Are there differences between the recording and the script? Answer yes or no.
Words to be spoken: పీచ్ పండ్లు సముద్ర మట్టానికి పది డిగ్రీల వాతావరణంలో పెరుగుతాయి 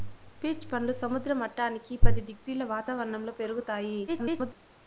yes